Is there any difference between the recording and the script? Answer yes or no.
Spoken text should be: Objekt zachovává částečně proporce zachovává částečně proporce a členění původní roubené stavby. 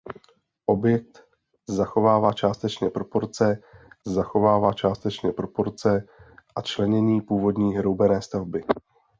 no